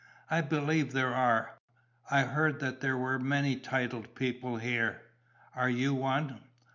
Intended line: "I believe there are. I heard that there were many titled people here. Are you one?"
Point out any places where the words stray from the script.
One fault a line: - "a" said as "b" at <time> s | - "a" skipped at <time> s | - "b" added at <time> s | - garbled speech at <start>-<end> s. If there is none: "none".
none